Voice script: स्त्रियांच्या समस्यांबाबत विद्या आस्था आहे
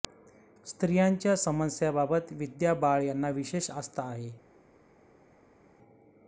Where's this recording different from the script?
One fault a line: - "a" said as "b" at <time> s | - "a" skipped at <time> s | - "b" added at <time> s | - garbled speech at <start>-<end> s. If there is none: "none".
- "बाळ यांना विशेष" added at 2.8 s